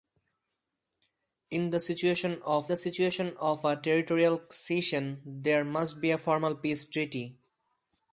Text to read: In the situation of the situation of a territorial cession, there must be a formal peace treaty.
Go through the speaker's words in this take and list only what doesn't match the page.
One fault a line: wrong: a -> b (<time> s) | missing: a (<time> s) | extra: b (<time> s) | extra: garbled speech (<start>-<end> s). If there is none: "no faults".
no faults